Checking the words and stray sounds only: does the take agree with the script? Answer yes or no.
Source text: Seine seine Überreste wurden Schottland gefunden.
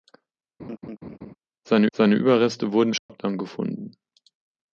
no